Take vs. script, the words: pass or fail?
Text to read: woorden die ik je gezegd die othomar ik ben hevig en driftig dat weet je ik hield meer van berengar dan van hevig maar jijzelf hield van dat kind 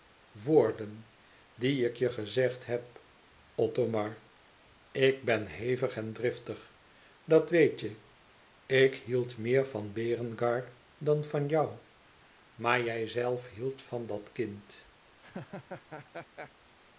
fail